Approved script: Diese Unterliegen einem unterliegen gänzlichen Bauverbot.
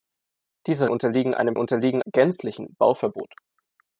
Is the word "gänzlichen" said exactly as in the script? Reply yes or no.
yes